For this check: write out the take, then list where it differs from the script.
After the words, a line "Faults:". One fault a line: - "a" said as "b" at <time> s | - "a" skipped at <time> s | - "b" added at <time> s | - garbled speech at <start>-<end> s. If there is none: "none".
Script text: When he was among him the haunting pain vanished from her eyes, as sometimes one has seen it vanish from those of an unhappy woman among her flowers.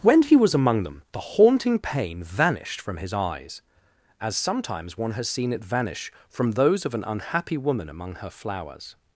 When he was among them the haunting pain vanished from his eyes, as sometimes one has seen it vanish from those of an unhappy woman among her flowers.
Faults:
- "him" said as "them" at 0.8 s
- "her" said as "his" at 3.0 s